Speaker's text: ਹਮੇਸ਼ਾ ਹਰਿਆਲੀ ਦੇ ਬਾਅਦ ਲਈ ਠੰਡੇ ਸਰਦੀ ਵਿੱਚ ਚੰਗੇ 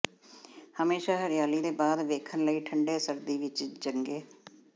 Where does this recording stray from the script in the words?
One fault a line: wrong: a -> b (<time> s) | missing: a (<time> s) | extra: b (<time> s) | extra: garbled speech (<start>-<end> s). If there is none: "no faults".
extra: ਵੇਖਣ (2.1 s)